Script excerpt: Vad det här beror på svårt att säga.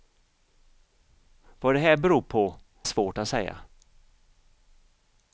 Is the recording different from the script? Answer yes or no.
no